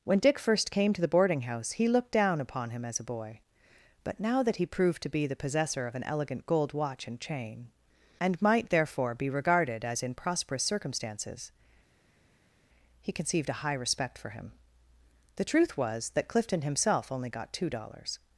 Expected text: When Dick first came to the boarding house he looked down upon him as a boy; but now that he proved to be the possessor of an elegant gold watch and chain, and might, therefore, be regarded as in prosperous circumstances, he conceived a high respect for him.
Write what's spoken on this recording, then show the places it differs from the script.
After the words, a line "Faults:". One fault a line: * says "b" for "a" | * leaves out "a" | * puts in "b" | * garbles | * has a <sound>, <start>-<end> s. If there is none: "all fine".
When Dick first came to the boarding house he looked down upon him as a boy; but now that he proved to be the possessor of an elegant gold watch and chain, and might, therefore, be regarded as in prosperous circumstances, he conceived a high respect for him. The truth was that Clifton himself only got two dollars
Faults:
* puts in "The truth was that Clifton himself only got two dollars"